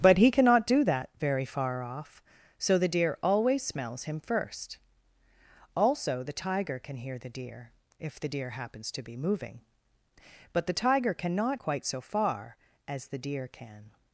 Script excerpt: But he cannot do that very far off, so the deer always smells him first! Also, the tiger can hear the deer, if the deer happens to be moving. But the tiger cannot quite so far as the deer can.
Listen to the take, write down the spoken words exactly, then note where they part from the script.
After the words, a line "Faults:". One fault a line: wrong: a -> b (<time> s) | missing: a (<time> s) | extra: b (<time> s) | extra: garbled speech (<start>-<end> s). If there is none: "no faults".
But he cannot do that very far off, so the deer always smells him first! Also, the tiger can hear the deer, if the deer happens to be moving. But the tiger cannot quite so far as the deer can.
Faults:
no faults